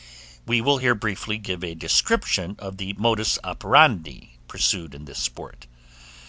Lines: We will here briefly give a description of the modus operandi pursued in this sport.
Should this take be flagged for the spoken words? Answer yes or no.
no